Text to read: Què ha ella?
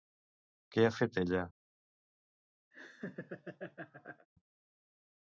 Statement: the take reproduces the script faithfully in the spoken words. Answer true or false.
false